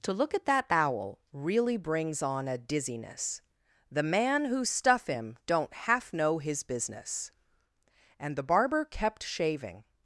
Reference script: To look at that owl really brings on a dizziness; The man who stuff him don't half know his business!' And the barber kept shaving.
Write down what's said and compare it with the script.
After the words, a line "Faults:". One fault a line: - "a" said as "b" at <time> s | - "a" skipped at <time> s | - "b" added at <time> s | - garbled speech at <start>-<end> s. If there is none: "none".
To look at that owl really brings on a dizziness; The man who stuff him don't half know his business!' And the barber kept shaving.
Faults:
none